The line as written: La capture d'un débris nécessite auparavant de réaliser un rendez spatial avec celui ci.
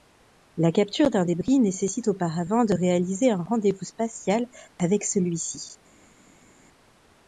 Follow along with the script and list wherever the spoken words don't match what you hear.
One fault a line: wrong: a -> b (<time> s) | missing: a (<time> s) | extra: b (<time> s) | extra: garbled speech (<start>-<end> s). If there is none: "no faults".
extra: vous (3.7 s)